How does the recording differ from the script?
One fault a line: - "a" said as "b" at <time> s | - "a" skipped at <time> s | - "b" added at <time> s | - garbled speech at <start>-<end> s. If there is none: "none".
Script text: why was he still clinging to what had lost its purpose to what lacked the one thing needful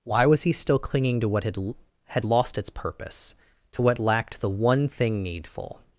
- "had" added at 2.1 s